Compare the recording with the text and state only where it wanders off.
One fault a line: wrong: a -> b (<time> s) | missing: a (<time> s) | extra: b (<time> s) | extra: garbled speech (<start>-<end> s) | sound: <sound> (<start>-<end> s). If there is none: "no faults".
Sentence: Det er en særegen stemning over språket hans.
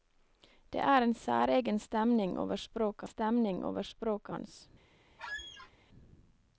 extra: stemning over språket (3.1 s)
sound: squeak (5.2-5.7 s)